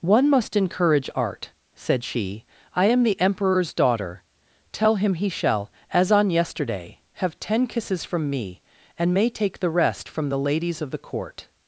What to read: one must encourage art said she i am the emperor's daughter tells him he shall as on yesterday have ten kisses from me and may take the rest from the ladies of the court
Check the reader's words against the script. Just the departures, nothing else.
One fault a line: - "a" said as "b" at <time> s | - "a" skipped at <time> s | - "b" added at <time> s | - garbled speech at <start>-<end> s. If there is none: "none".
- "tells" said as "tell" at 4.7 s